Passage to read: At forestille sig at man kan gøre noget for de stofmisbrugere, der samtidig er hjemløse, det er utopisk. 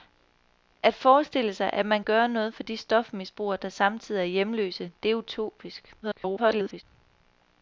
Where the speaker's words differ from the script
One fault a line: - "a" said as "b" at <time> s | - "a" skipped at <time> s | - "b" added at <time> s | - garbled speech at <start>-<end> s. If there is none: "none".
- "kan" skipped at 2.0 s
- garbled speech at 6.0-6.8 s